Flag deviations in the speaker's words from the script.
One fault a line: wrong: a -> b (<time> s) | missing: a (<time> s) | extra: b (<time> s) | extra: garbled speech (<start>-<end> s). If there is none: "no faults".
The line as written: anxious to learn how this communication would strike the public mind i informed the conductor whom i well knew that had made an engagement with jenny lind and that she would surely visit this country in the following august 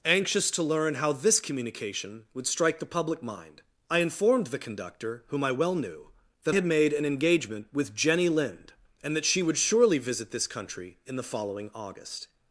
no faults